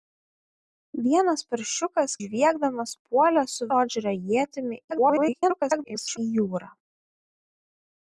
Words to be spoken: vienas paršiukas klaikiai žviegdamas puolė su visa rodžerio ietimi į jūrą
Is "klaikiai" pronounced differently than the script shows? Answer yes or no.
yes